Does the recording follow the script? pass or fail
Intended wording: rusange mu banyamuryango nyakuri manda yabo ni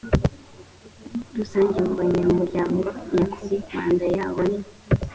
pass